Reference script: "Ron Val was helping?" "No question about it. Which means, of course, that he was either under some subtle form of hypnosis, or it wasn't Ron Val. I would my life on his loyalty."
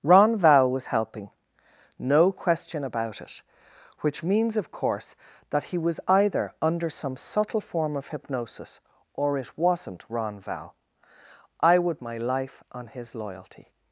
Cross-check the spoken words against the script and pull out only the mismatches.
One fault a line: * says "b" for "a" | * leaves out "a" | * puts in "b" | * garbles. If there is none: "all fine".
all fine